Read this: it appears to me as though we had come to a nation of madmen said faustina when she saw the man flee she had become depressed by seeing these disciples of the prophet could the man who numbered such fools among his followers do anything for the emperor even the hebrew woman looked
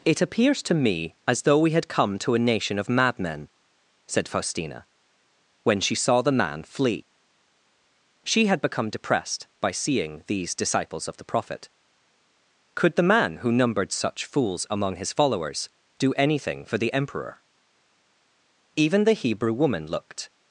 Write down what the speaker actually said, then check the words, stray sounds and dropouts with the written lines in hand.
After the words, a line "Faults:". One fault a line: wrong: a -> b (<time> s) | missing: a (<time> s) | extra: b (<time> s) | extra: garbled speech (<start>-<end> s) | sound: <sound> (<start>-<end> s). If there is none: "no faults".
it appears to me as though we had come to a nation of madmen said faustina when she saw the man flee she had become depressed by seeing these disciples of the prophet could the man who numbered such fools among his followers do anything for the emperor even the hebrew woman looked
Faults:
no faults